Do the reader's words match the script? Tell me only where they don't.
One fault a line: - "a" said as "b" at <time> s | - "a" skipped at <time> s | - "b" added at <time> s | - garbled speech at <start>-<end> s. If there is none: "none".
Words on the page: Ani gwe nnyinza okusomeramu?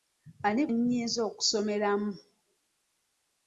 - "gwe" skipped at 0.6 s